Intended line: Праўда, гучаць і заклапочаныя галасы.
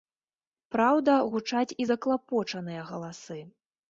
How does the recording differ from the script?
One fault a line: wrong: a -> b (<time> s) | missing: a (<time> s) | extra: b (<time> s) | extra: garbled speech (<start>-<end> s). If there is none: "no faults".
no faults